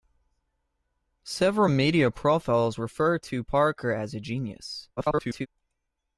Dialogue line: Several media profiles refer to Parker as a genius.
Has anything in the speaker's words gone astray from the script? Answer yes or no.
yes